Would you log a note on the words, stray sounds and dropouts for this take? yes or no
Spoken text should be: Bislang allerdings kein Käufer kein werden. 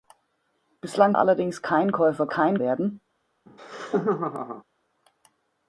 yes